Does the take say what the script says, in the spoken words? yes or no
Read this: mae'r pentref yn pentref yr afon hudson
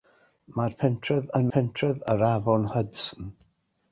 yes